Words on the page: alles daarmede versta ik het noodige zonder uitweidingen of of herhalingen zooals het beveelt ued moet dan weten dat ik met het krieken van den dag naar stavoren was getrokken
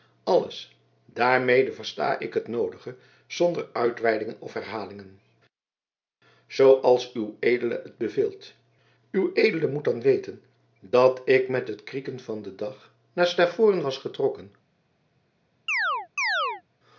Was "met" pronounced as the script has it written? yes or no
yes